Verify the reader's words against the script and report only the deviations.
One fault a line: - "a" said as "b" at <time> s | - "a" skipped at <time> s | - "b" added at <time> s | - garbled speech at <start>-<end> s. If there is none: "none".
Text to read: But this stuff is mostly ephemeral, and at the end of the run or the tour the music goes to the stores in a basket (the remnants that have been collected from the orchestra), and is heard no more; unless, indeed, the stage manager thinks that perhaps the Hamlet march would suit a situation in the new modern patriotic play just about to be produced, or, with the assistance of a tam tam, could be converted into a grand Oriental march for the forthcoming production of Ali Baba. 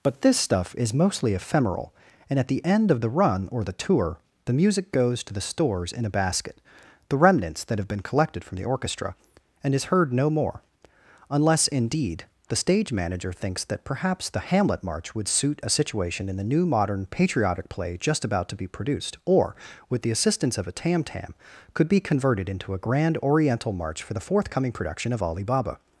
none